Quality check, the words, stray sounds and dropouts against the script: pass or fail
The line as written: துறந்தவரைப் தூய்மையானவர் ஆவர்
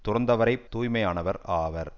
pass